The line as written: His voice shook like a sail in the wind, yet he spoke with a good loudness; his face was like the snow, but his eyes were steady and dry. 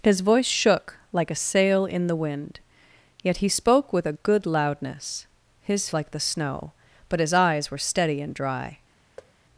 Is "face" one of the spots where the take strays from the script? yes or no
yes